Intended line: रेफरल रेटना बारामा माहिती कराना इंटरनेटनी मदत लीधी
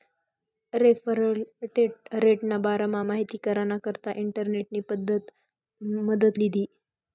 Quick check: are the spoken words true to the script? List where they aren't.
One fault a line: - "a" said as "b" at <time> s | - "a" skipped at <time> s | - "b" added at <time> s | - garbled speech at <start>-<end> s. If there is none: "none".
- "करता" added at 3.8 s